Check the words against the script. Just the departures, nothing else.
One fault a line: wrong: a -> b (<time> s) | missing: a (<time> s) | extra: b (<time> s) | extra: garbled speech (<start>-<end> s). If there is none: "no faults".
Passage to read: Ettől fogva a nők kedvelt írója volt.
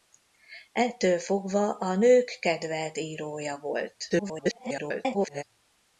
extra: garbled speech (4.1-5.4 s)